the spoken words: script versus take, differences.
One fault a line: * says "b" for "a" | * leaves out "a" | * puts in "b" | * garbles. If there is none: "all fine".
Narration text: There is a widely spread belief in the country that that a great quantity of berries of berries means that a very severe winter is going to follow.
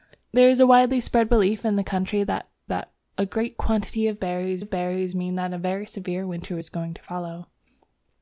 all fine